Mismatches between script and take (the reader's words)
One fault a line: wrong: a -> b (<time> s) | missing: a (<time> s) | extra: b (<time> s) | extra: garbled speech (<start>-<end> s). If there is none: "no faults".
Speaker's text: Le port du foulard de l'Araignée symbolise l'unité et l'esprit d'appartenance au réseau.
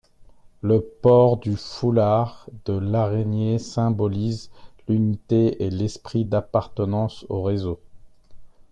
no faults